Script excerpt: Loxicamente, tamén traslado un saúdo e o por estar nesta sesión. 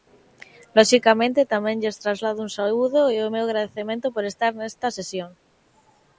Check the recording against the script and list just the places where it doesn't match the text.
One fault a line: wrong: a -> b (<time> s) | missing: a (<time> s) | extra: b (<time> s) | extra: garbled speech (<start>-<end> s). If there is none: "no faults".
extra: lles (1.8 s)
extra: meu agradecemento (3.3 s)